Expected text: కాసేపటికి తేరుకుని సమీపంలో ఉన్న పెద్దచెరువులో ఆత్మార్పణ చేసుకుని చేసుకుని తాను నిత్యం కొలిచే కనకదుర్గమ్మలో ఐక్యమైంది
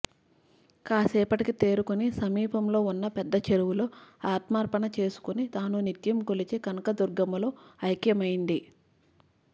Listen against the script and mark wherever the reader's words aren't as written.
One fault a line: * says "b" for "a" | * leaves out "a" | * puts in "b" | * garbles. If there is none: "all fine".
* leaves out "చేసుకుని"